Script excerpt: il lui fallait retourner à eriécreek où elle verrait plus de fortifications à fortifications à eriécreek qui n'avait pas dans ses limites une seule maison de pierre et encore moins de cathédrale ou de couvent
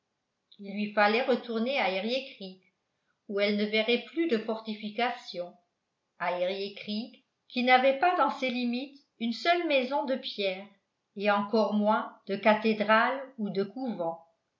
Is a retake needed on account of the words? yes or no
yes